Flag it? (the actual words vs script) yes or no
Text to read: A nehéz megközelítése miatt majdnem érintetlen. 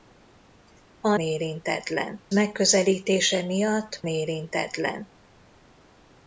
yes